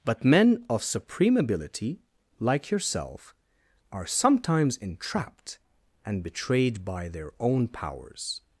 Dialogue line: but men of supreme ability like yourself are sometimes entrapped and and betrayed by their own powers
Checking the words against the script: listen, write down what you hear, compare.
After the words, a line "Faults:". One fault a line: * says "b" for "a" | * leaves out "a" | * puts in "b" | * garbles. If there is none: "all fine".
but men of supreme ability like yourself are sometimes entrapped and betrayed by their own powers
Faults:
* leaves out "and"